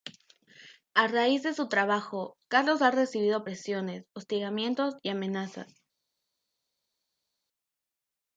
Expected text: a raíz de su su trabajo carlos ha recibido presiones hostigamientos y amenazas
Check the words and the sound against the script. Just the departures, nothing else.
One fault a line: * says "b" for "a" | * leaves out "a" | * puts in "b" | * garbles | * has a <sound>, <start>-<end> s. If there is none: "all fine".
* leaves out "su"